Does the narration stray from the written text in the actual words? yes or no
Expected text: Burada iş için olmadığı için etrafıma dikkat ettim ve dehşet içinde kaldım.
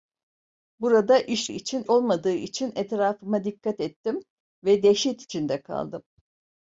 no